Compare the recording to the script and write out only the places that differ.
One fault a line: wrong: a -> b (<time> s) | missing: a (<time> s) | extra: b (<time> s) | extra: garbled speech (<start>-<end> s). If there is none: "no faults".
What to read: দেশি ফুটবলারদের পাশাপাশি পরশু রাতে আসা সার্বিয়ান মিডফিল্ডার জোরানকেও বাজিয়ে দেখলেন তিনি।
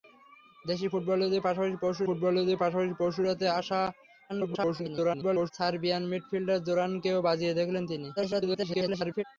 extra: ফুটবলারদের পাশাপাশি পরশু (2.1 s)
extra: garbled speech (4.3-5.5 s)
extra: garbled speech (8.2-9.2 s)